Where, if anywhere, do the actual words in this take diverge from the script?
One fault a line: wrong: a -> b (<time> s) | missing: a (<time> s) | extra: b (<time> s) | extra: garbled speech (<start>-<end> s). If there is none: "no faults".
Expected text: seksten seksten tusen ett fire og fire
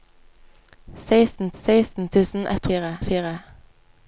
no faults